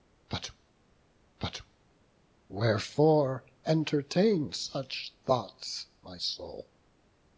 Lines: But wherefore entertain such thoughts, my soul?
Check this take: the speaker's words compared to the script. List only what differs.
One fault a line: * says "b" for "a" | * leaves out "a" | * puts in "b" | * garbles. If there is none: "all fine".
* puts in "but"